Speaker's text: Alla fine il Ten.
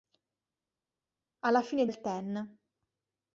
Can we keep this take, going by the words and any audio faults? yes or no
yes